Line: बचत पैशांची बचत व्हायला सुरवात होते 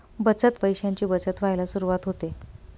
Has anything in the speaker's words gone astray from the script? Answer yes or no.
no